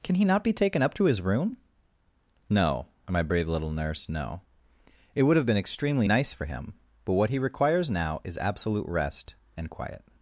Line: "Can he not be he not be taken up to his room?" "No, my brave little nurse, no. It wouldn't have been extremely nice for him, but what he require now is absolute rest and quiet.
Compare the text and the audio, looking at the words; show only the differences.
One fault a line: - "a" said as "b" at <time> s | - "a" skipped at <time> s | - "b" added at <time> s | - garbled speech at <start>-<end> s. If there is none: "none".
- "he not be" skipped at 0.5 s
- "wouldn't" said as "would" at 5.2 s
- "require" said as "requires" at 7.4 s